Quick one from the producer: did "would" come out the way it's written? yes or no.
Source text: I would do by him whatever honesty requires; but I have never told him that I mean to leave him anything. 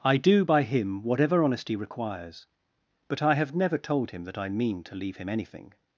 no